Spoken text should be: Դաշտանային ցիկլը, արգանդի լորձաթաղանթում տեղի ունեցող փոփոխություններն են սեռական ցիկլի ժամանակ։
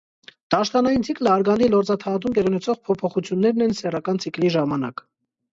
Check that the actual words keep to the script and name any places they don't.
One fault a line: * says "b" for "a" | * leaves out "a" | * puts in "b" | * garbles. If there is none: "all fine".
all fine